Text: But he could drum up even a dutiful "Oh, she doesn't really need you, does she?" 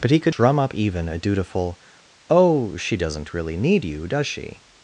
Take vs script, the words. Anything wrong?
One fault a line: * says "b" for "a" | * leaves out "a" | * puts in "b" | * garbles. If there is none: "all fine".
all fine